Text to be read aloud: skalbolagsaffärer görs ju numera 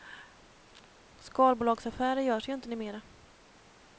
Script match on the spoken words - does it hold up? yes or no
no